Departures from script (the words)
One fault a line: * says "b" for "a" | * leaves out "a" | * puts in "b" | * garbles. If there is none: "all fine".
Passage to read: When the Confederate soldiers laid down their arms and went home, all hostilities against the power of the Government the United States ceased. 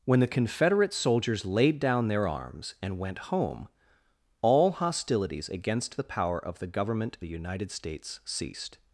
all fine